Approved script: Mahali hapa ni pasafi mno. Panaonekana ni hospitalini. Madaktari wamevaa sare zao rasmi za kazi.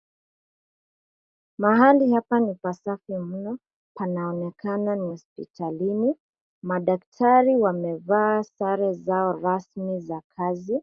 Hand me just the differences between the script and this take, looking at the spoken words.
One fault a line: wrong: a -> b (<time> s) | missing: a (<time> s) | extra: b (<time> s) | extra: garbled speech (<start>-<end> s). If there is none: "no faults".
no faults